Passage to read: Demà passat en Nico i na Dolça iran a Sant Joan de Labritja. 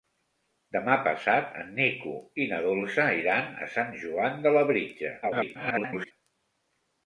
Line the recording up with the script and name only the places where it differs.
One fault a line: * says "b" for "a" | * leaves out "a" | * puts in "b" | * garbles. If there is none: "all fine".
* garbles